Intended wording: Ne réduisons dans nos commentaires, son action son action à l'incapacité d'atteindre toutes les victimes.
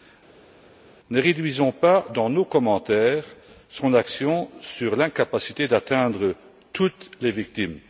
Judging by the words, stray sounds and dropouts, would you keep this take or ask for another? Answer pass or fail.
fail